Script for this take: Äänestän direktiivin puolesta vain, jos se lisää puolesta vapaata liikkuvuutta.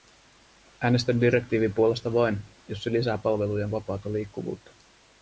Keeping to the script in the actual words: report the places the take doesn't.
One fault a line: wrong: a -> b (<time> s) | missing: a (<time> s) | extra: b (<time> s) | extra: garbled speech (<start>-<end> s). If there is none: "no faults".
wrong: puolesta -> palvelujen (3.2 s)